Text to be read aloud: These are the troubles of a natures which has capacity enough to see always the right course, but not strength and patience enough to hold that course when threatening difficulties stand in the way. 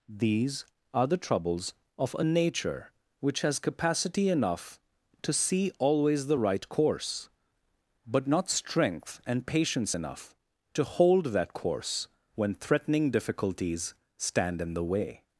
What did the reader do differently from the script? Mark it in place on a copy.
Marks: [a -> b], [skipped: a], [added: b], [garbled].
These are the troubles of a [natures -> nature] which has capacity enough to see always the right course, but not strength and patience enough to hold that course when threatening difficulties stand in the way.